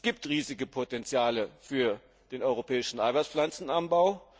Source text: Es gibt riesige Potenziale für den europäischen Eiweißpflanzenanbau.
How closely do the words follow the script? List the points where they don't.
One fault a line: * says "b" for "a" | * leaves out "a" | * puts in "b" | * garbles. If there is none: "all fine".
all fine